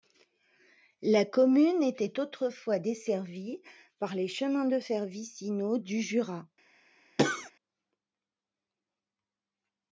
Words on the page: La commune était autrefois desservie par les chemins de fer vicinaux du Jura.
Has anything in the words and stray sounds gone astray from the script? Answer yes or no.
yes